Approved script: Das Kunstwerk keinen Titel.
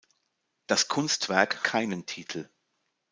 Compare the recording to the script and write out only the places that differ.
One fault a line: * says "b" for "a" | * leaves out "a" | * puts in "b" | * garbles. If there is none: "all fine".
all fine